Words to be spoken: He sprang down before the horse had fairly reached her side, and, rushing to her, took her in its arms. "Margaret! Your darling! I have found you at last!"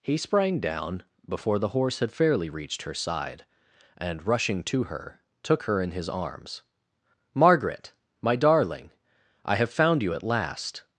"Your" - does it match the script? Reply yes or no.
no